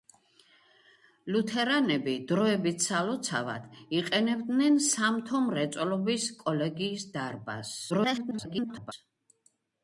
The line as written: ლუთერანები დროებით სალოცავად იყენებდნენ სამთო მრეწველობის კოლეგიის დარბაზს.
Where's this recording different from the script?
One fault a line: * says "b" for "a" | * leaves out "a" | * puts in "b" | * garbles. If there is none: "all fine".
* garbles